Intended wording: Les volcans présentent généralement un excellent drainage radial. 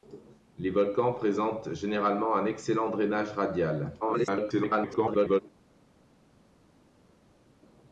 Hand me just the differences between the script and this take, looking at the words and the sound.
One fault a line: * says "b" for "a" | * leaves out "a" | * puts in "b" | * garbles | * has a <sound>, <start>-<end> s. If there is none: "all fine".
* garbles